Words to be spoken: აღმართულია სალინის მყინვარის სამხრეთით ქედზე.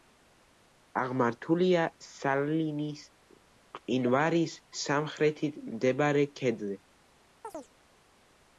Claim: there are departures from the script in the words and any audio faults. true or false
true